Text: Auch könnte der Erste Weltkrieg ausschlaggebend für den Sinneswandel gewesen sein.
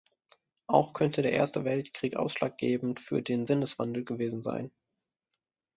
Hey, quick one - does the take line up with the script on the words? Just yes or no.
yes